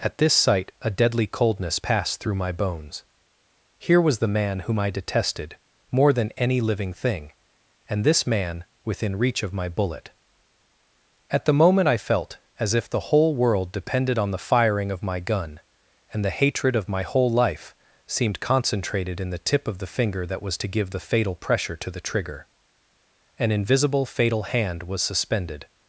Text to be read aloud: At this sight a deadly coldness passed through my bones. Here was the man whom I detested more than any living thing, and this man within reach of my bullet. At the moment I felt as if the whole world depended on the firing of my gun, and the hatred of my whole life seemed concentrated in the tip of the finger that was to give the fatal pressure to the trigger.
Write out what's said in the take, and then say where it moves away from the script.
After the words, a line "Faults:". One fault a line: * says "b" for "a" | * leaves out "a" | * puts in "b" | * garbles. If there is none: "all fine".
At this sight a deadly coldness passed through my bones. Here was the man whom I detested more than any living thing, and this man within reach of my bullet. At the moment I felt as if the whole world depended on the firing of my gun, and the hatred of my whole life seemed concentrated in the tip of the finger that was to give the fatal pressure to the trigger. An invisible fatal hand was suspended
Faults:
* puts in "An invisible fatal hand was suspended"